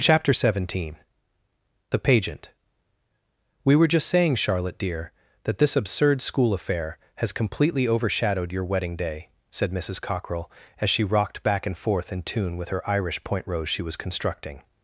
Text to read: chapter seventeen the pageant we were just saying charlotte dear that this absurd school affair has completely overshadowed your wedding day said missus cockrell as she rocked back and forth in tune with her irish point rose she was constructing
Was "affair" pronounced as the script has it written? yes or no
yes